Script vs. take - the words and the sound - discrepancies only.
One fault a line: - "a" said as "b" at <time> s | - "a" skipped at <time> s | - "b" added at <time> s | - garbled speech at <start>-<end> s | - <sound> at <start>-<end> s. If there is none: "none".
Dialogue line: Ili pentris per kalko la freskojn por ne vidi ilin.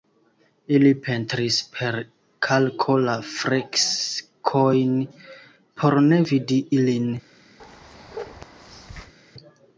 - bark at 7.6-9.1 s